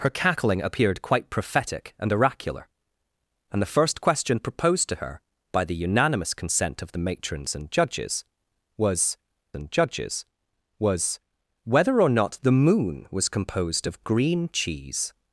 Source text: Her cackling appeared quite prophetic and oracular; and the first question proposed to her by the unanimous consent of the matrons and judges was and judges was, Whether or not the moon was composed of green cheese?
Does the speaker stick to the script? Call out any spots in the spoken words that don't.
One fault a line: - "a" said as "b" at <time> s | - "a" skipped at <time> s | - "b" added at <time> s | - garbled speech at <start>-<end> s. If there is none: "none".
none